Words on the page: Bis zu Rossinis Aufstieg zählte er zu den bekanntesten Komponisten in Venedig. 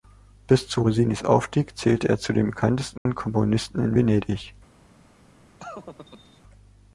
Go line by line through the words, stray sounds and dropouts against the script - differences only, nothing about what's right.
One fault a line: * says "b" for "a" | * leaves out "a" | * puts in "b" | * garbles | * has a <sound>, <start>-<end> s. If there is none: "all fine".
* has a dropout, 3.0-3.1 s
* has a laugh, 5.6-6.4 s